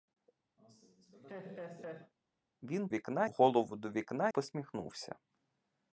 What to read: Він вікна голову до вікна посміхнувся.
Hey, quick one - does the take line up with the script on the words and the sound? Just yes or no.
no